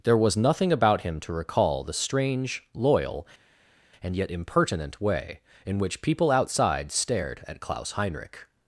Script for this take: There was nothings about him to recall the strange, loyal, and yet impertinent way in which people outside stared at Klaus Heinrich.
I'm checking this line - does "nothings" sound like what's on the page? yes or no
no